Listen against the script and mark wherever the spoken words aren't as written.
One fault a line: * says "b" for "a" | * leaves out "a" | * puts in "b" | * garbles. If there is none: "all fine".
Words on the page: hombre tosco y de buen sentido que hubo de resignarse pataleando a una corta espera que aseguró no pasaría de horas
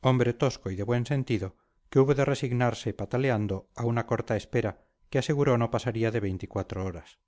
* puts in "veinticuatro"